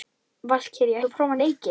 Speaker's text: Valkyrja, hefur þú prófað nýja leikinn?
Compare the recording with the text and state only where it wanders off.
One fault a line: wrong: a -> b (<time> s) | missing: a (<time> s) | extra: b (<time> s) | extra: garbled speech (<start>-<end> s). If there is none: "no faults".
missing: hefur (1.0 s)
missing: nýja (1.4 s)